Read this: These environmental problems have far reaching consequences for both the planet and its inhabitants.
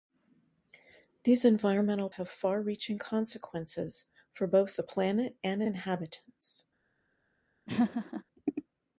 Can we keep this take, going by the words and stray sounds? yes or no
no